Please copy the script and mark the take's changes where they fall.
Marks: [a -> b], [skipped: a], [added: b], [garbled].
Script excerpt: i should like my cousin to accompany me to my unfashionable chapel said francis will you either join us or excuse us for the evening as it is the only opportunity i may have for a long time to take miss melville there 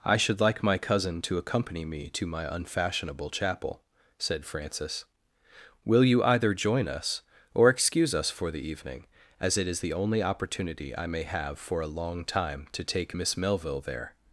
i should like my cousin to accompany me to my unfashionable chapel said francis will you either join us or excuse us for the evening as it is the only opportunity i may have for a long time to take miss melville there